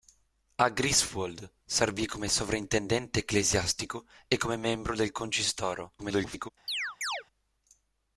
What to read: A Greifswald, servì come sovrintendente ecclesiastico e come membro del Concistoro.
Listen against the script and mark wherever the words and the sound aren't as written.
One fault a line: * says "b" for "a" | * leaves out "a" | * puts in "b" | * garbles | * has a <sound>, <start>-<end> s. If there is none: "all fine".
* garbles
* has a chirp, 6.7-7.2 s